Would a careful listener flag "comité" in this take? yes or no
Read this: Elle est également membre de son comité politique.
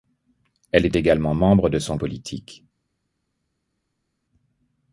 yes